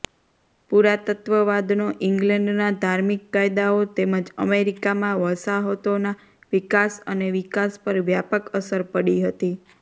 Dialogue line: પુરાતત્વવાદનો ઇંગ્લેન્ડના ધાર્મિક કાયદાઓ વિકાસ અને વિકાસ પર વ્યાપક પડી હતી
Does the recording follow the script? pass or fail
fail